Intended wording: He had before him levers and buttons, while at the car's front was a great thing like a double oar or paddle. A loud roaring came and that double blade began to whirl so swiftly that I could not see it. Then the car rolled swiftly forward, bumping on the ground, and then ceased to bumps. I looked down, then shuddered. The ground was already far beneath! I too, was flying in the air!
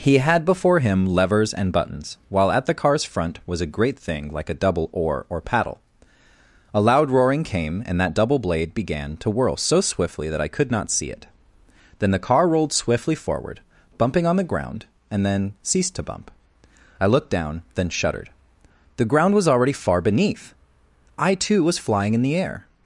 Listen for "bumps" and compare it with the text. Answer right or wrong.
wrong